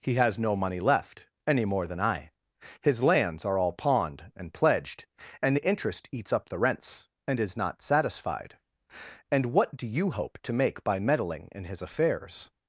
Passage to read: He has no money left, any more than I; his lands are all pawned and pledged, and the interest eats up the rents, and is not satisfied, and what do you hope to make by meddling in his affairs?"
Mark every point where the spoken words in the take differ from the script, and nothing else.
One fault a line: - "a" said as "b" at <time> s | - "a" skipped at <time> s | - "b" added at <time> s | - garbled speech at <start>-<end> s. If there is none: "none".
none